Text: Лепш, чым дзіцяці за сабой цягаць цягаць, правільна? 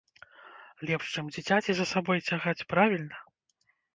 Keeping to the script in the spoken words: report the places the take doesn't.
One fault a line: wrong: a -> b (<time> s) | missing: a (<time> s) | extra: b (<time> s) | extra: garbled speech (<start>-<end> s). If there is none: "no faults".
missing: цягаць (2.7 s)